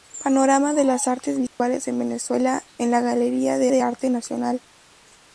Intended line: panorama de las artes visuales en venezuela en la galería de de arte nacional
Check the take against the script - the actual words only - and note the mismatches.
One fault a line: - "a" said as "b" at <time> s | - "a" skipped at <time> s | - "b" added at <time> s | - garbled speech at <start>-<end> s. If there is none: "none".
none